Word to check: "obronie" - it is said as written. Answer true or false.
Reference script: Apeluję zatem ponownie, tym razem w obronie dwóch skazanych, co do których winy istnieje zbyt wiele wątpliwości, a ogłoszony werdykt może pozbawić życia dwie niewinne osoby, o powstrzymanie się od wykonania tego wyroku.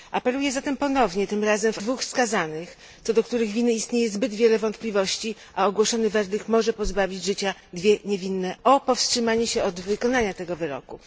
false